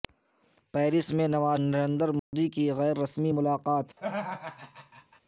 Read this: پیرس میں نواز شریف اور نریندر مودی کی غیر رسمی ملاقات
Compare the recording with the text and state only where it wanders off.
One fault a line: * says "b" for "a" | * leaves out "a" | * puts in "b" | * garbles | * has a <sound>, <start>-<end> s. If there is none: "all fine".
* leaves out "شریف اور"
* has a dropout, 2.2-2.3 s
* has a laugh, 4.0-5.2 s